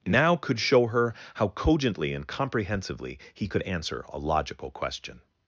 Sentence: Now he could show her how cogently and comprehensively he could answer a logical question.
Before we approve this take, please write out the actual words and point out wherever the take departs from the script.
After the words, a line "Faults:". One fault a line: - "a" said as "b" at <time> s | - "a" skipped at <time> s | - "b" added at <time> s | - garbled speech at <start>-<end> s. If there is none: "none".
Now could show her how cogently and comprehensively he could answer a logical question.
Faults:
- "he" skipped at 0.3 s